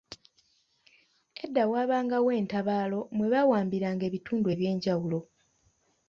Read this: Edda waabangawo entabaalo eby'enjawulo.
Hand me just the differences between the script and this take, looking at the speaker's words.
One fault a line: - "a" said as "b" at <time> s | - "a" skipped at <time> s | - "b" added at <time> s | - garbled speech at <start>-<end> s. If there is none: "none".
- "mwe baawambiranga ebitundu" added at 3.1 s